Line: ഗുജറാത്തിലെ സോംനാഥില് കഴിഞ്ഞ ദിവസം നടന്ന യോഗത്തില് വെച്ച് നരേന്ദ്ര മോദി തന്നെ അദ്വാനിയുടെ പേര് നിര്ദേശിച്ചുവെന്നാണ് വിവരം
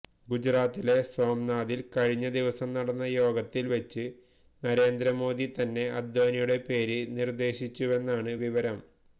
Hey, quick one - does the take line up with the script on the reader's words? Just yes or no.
yes